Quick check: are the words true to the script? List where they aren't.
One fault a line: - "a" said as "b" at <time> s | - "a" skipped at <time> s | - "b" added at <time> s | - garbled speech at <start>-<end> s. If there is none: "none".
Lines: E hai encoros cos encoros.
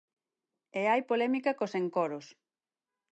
- "encoros" said as "polémica" at 1.1 s